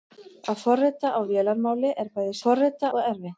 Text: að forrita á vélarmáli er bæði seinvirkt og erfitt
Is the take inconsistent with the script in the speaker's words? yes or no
yes